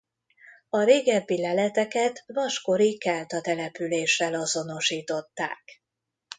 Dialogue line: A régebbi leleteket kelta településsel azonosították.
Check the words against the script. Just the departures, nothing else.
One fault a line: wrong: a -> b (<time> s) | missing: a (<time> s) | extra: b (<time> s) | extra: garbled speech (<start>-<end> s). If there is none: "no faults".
extra: vaskori (2.3 s)